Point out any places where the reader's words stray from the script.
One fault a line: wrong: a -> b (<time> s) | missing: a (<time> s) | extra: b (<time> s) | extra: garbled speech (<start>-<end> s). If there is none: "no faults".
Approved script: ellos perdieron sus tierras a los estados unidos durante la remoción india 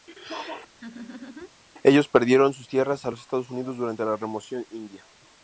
no faults